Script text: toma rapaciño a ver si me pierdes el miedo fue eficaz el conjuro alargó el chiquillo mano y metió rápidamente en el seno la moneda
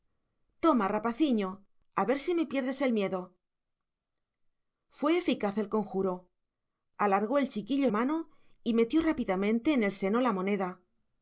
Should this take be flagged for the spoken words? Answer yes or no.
no